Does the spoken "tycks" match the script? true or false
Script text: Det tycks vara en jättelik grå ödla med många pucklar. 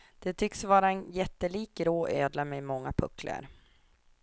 true